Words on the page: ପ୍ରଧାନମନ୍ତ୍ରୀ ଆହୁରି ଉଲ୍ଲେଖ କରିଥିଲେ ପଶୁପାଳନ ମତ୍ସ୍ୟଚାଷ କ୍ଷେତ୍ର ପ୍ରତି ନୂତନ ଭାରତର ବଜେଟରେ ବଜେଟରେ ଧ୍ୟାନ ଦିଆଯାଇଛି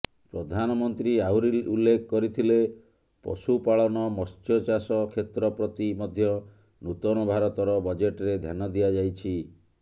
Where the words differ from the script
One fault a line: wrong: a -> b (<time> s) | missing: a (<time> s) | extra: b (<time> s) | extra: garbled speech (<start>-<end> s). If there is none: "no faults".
extra: ମଧ୍ୟ (6.0 s)
missing: ବଜେଟରେ (8.4 s)